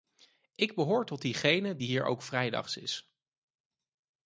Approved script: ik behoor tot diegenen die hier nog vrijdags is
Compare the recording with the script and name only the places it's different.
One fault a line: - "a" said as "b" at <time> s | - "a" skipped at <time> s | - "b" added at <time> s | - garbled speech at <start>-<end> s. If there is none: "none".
- "nog" said as "ook" at 2.0 s